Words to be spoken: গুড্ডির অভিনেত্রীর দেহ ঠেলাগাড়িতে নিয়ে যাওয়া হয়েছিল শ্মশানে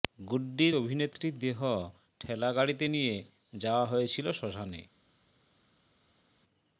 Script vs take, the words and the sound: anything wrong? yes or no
no